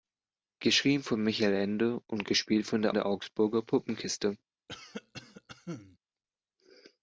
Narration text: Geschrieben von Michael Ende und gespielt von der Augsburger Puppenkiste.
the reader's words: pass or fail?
fail